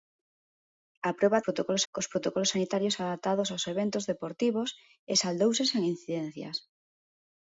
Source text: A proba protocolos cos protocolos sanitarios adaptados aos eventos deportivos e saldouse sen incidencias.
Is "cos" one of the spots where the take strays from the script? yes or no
no